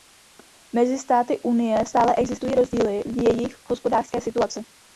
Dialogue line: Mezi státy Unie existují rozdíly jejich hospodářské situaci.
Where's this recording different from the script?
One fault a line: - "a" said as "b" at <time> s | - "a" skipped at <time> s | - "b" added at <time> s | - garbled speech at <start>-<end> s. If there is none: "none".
- "stále" added at 1.9 s
- "v" added at 3.0 s